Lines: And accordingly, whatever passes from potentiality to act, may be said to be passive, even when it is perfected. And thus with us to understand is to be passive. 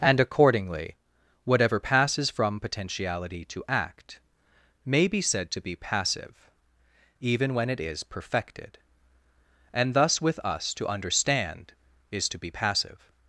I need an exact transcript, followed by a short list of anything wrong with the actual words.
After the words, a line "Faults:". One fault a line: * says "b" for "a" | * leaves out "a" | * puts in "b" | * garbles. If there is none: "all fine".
And accordingly, whatever passes from potentiality to act, may be said to be passive, even when it is perfected. And thus with us to understand is to be passive.
Faults:
all fine